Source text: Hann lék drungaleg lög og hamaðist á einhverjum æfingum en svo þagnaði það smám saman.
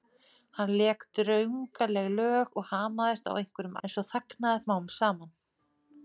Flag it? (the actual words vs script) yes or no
yes